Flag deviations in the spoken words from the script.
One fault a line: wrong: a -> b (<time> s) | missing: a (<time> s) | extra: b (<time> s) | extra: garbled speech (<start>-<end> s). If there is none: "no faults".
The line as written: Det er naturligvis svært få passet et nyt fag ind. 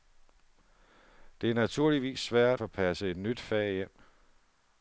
no faults